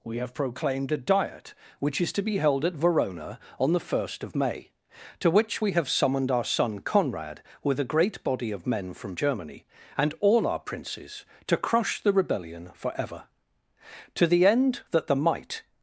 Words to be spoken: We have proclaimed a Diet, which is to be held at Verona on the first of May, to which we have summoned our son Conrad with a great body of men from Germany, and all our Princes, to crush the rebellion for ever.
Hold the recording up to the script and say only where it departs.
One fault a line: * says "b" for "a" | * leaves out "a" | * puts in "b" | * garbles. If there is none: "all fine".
* puts in "To the end that the might"